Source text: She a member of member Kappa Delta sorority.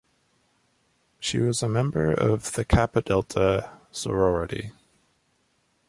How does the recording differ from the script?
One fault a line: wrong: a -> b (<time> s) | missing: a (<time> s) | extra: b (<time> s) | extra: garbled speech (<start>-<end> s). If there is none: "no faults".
extra: was (1.4 s)
wrong: member -> the (2.5 s)